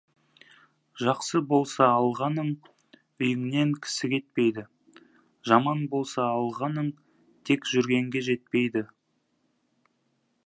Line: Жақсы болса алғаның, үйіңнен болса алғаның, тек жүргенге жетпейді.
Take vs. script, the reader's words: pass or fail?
fail